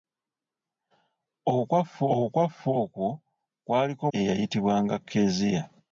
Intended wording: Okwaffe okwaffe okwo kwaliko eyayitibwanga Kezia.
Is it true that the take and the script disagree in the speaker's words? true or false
false